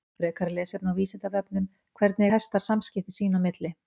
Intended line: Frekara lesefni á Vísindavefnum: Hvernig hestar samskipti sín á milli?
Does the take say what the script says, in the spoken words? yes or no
yes